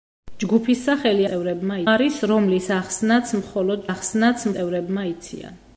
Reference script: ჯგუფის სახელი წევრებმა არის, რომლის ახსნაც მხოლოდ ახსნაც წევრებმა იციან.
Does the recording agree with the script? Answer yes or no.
yes